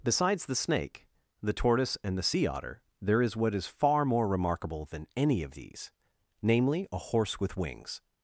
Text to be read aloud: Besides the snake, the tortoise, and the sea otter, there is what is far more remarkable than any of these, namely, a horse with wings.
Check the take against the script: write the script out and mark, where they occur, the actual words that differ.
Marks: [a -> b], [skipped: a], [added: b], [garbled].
Besides the snake, the tortoise, and the sea otter, there is what is far more remarkable than any of these, namely, a horse with wings.